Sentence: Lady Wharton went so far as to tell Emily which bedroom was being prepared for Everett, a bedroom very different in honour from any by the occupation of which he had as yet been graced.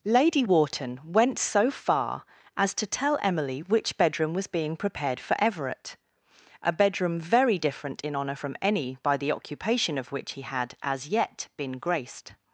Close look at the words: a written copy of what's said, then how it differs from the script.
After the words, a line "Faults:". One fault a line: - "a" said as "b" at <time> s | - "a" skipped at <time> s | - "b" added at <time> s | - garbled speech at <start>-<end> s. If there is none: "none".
Lady Wharton went so far as to tell Emily which bedroom was being prepared for Everett, a bedroom very different in honour from any by the occupation of which he had as yet been graced.
Faults:
none